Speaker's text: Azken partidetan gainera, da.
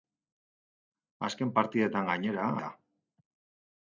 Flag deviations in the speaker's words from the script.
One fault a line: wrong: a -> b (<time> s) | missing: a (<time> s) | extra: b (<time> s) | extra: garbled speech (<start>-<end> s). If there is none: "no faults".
no faults